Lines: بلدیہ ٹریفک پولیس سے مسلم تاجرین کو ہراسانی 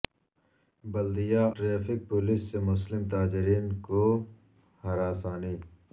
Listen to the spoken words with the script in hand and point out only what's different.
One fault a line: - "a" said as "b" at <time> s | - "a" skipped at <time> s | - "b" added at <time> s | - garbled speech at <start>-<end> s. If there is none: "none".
none